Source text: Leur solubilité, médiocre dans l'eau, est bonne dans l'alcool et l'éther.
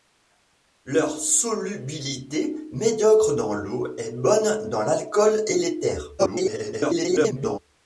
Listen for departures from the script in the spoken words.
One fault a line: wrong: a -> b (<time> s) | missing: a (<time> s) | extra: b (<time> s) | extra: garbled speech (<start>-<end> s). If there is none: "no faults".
extra: garbled speech (6.2-7.6 s)